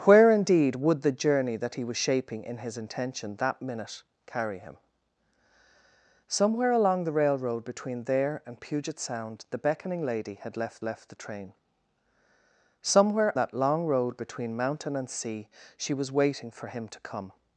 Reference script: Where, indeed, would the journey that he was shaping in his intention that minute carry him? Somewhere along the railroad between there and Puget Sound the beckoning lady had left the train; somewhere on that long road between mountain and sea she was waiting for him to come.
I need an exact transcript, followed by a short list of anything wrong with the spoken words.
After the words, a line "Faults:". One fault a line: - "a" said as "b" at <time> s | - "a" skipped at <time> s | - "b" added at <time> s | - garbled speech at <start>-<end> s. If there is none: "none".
Where, indeed, would the journey that he was shaping in his intention that minute carry him? Somewhere along the railroad between there and Puget Sound the beckoning lady had left left the train; somewhere that long road between mountain and sea she was waiting for him to come.
Faults:
- "left" added at 10.8 s
- "on" skipped at 13.4 s